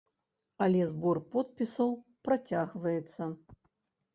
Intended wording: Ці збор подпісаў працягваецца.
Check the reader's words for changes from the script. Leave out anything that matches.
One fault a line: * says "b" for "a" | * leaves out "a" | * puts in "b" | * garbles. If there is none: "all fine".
* says "Але" for "Ці"